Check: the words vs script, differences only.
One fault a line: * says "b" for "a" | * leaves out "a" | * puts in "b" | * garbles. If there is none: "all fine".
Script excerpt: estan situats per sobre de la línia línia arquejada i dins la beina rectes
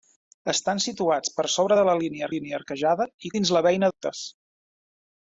all fine